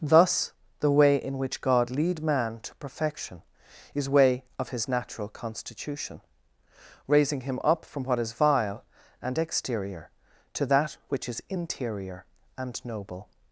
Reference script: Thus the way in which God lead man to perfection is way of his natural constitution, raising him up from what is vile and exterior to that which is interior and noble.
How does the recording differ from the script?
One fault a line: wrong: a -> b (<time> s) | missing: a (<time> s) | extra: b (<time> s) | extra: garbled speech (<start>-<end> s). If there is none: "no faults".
no faults